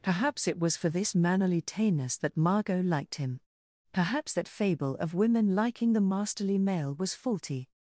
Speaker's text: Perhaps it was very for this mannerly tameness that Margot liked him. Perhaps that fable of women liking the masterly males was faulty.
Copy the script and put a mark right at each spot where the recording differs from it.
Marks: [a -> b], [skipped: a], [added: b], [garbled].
Perhaps it was [skipped: very] for this mannerly tameness that Margot liked him. Perhaps that fable of women liking the masterly [males -> male] was faulty.